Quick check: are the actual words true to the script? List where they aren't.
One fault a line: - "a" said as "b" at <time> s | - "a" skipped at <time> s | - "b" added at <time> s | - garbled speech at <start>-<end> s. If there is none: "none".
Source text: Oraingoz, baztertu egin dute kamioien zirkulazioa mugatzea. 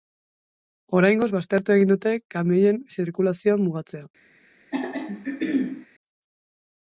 none